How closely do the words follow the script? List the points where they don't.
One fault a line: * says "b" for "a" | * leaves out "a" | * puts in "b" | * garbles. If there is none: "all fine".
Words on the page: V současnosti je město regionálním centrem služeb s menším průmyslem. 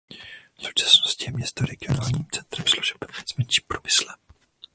all fine